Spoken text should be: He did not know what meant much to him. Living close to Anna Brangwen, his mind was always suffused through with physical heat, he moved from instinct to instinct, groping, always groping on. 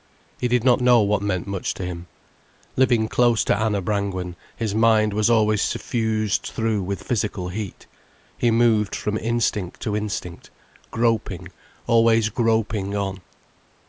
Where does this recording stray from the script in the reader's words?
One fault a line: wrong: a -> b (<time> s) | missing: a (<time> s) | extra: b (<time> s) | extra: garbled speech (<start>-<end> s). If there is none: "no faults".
no faults